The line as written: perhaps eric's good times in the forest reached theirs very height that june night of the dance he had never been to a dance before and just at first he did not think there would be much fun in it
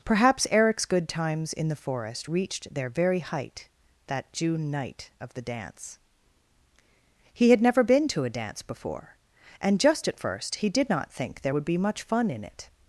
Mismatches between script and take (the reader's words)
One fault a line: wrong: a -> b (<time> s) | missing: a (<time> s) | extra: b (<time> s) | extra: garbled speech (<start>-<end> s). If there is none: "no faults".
wrong: theirs -> their (2.7 s)